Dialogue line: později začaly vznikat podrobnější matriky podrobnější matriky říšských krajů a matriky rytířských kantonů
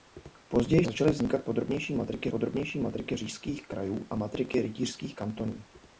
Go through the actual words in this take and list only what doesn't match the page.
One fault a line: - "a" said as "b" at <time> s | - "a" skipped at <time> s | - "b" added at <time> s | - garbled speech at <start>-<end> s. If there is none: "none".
none